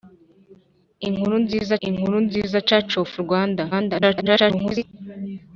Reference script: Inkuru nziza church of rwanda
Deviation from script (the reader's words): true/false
true